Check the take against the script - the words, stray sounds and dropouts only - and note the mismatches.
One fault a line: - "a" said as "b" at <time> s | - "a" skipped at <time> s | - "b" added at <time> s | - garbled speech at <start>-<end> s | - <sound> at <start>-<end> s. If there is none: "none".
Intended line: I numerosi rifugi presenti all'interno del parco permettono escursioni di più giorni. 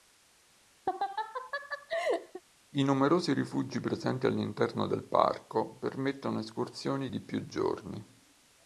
- laugh at 0.9-2.4 s